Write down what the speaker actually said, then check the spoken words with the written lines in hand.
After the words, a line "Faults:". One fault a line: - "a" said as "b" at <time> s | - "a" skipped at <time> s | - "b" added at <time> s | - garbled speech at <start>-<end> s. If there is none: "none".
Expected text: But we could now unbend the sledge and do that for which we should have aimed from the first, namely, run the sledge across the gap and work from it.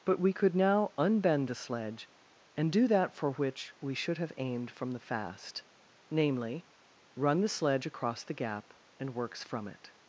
But we could now unbend the sledge and do that for which we should have aimed from the fast, namely, run the sledge across the gap and works from it.
Faults:
- "first" said as "fast" at 5.0 s
- "work" said as "works" at 9.1 s